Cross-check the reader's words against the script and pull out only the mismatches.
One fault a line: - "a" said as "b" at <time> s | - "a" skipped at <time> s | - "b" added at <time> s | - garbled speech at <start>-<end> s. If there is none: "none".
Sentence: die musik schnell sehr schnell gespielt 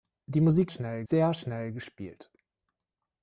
none